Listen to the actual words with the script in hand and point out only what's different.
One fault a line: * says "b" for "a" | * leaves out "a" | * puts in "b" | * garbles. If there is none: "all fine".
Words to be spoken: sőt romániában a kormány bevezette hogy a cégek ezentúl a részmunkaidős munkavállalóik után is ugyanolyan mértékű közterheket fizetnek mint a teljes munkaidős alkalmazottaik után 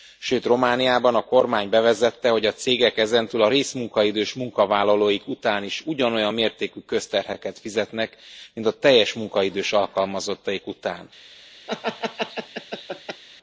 all fine